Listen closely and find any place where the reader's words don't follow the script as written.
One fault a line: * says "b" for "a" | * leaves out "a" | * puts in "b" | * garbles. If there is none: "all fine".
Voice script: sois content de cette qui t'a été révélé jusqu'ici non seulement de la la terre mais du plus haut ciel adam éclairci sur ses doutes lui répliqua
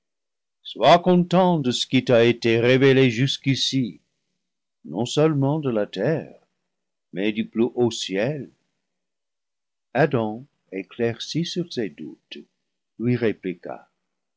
* says "ce" for "cette"
* leaves out "la"